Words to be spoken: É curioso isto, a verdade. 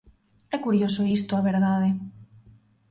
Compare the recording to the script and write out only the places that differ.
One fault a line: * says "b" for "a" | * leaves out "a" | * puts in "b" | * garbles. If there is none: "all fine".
all fine